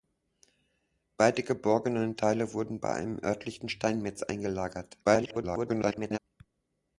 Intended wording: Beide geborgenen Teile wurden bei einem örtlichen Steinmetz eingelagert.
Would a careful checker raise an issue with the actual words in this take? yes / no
yes